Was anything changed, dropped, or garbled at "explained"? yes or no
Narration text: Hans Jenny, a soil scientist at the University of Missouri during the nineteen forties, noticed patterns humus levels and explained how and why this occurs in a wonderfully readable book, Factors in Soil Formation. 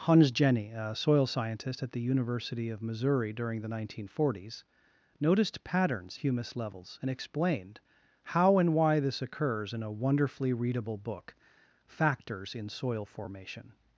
no